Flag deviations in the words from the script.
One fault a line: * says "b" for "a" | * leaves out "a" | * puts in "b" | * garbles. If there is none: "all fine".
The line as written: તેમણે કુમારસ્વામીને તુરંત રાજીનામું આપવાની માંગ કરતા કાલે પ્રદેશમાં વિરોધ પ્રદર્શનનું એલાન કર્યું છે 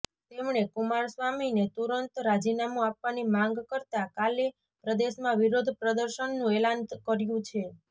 all fine